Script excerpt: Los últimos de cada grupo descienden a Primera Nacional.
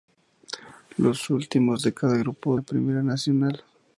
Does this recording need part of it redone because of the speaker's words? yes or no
yes